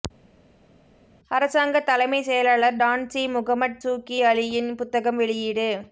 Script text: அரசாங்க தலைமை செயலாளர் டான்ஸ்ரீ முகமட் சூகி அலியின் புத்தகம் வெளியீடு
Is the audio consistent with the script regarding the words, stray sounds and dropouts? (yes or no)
yes